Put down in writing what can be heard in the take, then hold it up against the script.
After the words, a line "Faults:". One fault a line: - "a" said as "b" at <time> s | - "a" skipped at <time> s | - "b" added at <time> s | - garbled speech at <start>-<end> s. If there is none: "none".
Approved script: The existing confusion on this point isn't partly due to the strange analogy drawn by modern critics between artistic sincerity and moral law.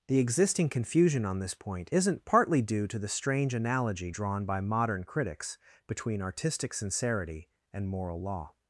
The existing confusion on this point isn't partly due to the strange analogy drawn by modern critics between artistic sincerity and moral law.
Faults:
none